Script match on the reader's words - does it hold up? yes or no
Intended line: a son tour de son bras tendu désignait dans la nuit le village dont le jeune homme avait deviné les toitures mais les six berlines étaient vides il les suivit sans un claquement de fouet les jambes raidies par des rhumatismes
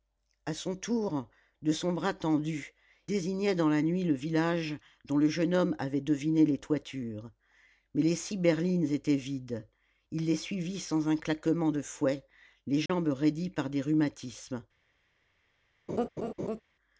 yes